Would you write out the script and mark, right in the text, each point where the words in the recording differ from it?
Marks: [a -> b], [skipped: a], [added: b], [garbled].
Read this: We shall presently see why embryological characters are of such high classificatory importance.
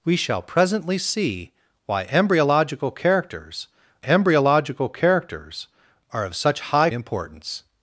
We shall presently see why embryological characters [added: embryological characters] are of such high [skipped: classificatory] importance.